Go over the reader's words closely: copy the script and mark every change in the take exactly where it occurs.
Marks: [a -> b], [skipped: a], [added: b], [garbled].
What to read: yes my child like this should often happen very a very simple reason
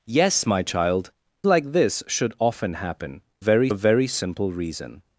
yes my child like this should often happen very a very simple reason